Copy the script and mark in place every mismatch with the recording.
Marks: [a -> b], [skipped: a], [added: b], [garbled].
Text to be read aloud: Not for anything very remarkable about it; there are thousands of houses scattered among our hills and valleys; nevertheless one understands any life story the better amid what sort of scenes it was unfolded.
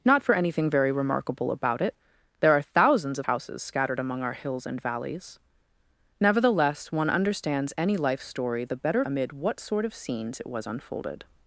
Not for anything very remarkable about it; there are thousands of houses scattered among our hills and valleys; nevertheless one understands any life story the better amid what sort of scenes it was unfolded.